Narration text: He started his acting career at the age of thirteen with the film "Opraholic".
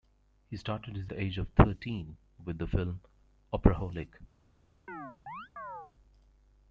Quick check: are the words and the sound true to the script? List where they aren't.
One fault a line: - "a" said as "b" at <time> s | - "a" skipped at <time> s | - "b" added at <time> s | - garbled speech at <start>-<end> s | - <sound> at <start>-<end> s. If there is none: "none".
- "acting career at" skipped at 1.1 s
- chirp at 4.9-5.9 s